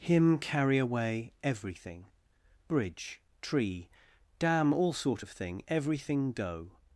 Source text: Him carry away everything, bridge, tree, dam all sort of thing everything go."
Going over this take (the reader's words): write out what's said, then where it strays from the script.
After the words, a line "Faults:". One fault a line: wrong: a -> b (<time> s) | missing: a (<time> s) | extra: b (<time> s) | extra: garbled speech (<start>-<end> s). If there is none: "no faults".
Him carry away everything, bridge, tree, dam all sort of thing everything go."
Faults:
no faults